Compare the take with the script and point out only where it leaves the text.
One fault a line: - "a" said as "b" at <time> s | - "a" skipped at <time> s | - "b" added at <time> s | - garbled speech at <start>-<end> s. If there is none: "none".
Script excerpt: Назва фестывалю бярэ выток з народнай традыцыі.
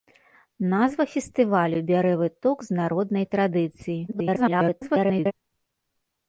- garbled speech at 4.1-5.3 s